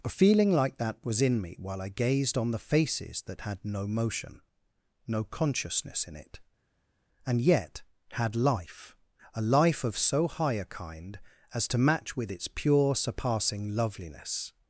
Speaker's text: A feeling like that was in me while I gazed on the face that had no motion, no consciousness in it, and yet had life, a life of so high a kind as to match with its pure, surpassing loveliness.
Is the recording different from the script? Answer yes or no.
yes